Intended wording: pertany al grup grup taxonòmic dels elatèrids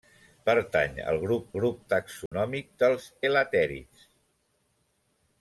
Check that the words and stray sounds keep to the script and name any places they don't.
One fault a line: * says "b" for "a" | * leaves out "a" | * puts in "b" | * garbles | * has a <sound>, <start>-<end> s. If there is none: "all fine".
* has a dropout, 2.3-2.3 s